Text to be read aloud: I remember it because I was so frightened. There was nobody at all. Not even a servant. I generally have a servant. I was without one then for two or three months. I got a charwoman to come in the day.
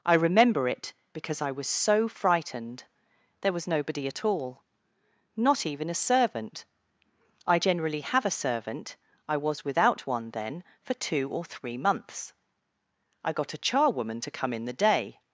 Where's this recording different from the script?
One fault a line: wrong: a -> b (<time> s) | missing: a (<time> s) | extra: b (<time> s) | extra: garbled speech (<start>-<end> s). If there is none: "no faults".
no faults